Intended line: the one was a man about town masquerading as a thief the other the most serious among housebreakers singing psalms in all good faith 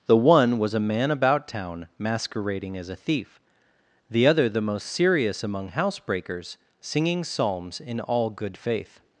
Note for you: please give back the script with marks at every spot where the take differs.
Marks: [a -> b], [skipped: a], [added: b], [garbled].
the one was a man about town masquerading as a thief the other the most serious among housebreakers singing psalms in all good faith